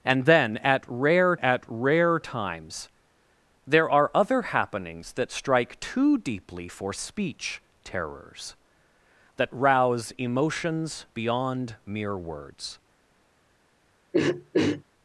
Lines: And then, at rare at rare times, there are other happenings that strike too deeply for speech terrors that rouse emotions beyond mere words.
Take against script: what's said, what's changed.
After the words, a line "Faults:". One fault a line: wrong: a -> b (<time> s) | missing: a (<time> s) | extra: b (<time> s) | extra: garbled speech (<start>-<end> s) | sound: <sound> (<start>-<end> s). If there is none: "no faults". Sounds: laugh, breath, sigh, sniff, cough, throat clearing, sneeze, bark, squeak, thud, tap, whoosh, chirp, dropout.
And then, at rare at rare times, there are other happenings that strike too deeply for speech terrors that rouse emotions beyond mere words.
Faults:
sound: throat clearing (14.1-14.8 s)